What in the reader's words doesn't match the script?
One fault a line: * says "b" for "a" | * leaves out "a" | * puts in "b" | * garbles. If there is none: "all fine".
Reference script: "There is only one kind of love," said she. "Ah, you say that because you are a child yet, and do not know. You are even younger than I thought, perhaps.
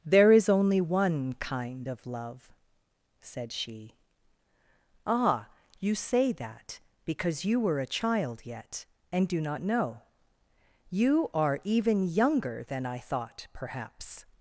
* says "were" for "are"